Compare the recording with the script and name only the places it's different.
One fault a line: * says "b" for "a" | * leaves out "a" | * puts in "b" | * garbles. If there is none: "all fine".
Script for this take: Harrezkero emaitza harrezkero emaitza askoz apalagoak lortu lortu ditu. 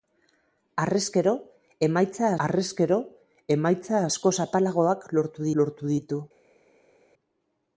all fine